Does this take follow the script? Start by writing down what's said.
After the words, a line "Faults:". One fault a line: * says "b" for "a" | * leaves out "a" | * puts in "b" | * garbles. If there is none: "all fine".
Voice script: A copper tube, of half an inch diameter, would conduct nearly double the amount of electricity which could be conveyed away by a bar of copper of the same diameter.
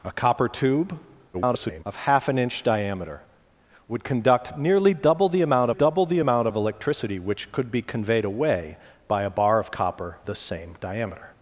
A copper tube, [garbled] of half an inch diameter, would conduct nearly double the amount double the amount of electricity which could be conveyed away by a bar of copper the same diameter.
Faults:
* garbles
* puts in "double the amount"
* leaves out "of"